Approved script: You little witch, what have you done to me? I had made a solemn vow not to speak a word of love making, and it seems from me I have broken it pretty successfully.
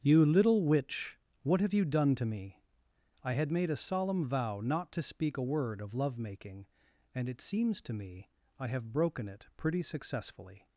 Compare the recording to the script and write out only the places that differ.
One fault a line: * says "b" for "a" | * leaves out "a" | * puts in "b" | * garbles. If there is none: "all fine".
* says "to" for "from"